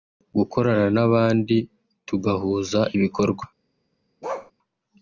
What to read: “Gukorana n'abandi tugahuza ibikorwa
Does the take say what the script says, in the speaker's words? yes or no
yes